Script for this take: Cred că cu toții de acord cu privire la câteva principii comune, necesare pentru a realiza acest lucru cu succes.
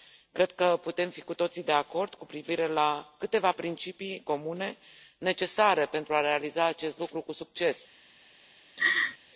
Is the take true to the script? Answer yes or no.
no